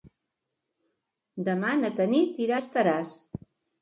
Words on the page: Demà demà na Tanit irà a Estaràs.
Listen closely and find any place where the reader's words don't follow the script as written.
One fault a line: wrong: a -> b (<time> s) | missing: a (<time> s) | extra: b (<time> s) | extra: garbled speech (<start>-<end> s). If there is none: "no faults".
missing: demà (1.7 s)